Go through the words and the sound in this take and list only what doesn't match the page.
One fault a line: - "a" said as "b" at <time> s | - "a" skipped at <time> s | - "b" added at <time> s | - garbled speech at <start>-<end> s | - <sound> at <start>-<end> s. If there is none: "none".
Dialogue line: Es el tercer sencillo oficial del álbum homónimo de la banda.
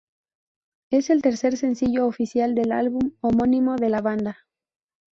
none